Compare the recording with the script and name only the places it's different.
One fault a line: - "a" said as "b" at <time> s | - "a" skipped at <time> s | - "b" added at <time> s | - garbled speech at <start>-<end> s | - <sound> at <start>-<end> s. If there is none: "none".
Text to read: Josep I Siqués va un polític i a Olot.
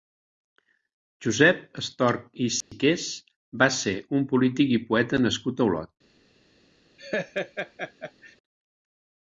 - "Estorch" added at 1.8 s
- dropout at 2.6-2.7 s
- "ser" added at 3.8 s
- "poeta nascut" added at 4.9 s
- laugh at 7.0-8.4 s